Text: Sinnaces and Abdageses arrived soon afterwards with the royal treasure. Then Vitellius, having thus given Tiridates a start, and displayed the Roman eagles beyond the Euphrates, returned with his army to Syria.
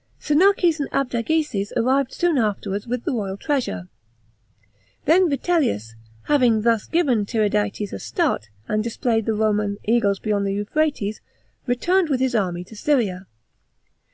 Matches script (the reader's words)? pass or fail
pass